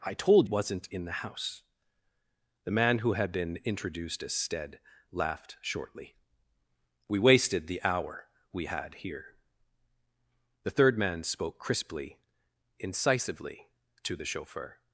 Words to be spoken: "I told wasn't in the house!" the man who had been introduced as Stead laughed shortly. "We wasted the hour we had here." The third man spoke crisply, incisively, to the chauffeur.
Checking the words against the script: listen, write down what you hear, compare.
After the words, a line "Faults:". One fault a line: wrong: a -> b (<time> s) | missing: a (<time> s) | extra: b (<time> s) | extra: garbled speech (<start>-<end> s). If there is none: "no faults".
"I told wasn't in the house!" the man who had been introduced as Stead laughed shortly. "We wasted the hour we had here." The third man spoke crisply, incisively, to the chauffeur.
Faults:
no faults